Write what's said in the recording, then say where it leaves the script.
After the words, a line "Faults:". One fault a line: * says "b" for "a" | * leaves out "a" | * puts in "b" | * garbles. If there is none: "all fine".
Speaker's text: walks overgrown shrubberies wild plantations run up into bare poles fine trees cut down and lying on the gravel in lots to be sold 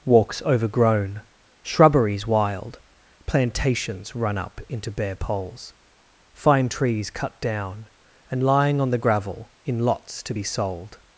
walks overgrown shrubberies wild plantations run up into bare poles fine trees cut down and lying on the gravel in lots to be sold
Faults:
all fine